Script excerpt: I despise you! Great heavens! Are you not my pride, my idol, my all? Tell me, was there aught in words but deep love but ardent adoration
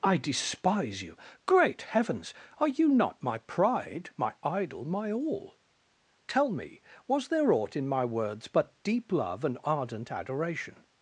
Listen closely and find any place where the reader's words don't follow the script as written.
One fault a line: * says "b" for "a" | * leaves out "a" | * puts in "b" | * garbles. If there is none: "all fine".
* puts in "my"
* says "and" for "but"